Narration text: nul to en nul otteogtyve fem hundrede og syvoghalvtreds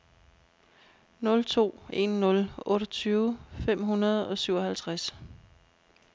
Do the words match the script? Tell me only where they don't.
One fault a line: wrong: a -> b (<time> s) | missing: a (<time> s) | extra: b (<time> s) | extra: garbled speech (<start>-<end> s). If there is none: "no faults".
no faults